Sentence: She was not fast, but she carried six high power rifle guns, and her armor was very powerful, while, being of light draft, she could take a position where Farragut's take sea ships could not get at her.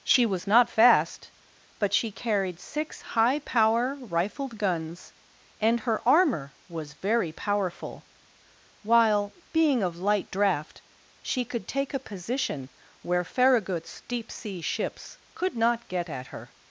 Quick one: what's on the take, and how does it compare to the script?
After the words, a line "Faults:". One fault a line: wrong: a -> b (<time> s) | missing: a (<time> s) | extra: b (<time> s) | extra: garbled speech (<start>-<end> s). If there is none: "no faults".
She was not fast, but she carried six high power rifled guns, and her armor was very powerful, while, being of light draft, she could take a position where Farragut's deep sea ships could not get at her.
Faults:
wrong: rifle -> rifled (4.0 s)
wrong: take -> deep (14.1 s)